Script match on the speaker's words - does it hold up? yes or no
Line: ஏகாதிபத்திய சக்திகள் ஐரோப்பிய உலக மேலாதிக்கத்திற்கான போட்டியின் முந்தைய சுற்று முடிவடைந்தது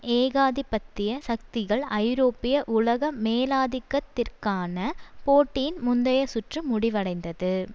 yes